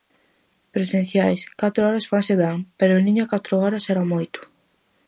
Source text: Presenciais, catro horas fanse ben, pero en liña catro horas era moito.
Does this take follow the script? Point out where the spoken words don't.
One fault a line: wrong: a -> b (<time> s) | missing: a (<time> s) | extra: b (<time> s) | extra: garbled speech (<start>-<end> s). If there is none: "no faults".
no faults